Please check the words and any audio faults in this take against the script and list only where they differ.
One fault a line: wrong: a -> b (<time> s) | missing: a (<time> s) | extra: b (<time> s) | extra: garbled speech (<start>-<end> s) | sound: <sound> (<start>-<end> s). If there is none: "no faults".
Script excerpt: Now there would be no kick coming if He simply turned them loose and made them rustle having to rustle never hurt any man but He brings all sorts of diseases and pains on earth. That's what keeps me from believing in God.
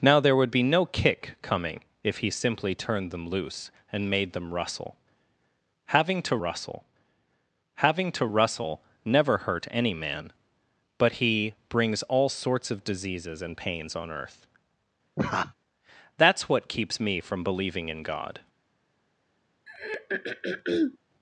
extra: having to rustle (7.8 s)
sound: laugh (15.2-15.5 s)
sound: throat clearing (19.7-21.0 s)